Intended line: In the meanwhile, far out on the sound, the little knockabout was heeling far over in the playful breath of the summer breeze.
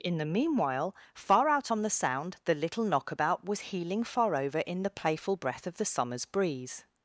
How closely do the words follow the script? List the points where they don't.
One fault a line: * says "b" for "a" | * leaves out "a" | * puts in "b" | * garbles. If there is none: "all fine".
* says "summers" for "summer"